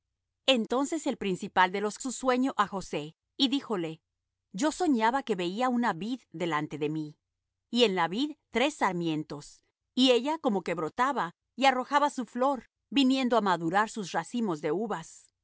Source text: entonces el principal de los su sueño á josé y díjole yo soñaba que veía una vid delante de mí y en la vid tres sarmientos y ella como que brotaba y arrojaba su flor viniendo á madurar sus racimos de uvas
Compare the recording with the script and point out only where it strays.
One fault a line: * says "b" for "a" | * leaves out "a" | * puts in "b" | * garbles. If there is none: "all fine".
all fine